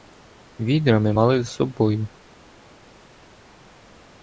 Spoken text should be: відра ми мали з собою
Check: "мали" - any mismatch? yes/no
no